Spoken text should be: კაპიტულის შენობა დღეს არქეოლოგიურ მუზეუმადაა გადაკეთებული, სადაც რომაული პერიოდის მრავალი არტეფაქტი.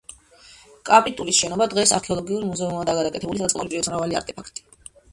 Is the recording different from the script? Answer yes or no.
no